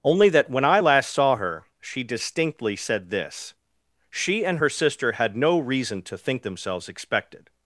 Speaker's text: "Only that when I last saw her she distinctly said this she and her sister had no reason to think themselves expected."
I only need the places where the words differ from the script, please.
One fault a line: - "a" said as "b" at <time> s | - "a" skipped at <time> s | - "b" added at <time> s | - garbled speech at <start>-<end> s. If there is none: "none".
none